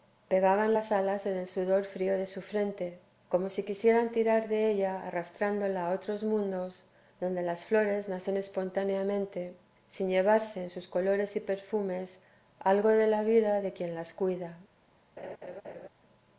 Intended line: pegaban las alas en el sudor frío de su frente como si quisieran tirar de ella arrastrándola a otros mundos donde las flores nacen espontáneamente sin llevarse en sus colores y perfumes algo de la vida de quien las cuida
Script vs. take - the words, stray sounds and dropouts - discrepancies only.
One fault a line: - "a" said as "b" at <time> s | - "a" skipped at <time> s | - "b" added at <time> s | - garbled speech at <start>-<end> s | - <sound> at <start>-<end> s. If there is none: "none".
- laugh at 15.2-15.9 s